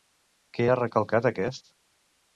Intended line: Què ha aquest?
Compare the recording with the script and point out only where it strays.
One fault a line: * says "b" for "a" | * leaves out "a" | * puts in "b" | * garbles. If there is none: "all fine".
* puts in "recalcat"